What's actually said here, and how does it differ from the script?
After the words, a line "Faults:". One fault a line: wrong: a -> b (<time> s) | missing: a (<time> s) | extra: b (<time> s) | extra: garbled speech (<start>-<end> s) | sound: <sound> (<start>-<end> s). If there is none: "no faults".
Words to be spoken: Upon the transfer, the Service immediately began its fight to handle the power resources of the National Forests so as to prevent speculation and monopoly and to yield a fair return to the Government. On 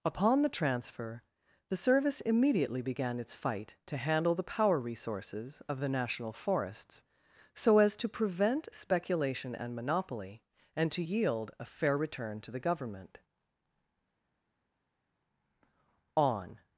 Upon the transfer, the Service immediately began its fight to handle the power resources of the National Forests so as to prevent speculation and monopoly and to yield a fair return to the Government. On
Faults:
no faults